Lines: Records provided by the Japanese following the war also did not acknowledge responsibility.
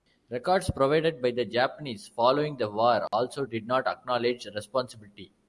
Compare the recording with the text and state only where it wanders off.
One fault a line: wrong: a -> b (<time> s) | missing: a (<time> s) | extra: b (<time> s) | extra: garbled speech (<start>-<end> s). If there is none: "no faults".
no faults